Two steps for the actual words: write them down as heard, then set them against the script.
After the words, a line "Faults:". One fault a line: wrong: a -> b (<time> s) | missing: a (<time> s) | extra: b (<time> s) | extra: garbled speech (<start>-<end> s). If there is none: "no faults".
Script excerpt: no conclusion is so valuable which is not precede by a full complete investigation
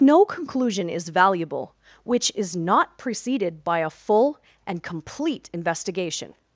no conclusion is valuable which is not preceded by a full and complete investigation
Faults:
missing: so (1.1 s)
wrong: precede -> preceded (3.0 s)
extra: and (4.7 s)